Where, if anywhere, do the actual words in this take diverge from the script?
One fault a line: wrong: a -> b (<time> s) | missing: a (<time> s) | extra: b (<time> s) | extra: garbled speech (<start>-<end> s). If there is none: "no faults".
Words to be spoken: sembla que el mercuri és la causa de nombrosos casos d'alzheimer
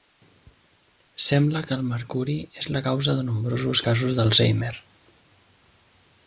no faults